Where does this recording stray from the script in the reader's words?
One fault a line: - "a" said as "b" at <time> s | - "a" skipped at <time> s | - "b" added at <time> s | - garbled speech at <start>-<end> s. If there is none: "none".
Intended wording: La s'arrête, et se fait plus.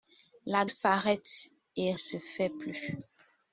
none